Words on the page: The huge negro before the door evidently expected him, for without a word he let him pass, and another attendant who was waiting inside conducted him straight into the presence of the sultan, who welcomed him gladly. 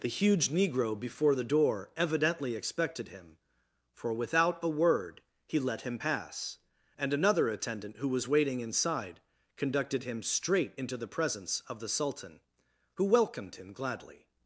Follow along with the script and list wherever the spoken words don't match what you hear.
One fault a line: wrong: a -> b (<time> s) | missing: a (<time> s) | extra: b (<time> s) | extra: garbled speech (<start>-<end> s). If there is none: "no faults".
no faults